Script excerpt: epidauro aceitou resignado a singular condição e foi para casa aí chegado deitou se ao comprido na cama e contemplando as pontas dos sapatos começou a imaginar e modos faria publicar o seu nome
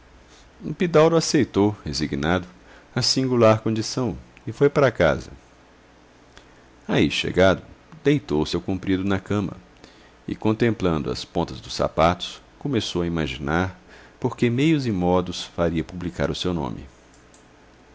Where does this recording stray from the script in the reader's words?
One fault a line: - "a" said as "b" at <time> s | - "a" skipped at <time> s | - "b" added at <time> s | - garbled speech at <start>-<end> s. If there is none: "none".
- "por que meios" added at 14.2 s